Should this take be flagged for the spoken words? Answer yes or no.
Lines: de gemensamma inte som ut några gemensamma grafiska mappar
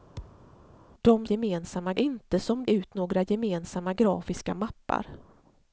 no